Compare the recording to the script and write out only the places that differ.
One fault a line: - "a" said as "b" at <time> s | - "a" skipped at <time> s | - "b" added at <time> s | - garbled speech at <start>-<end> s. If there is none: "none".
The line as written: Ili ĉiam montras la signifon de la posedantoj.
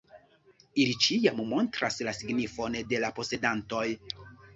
none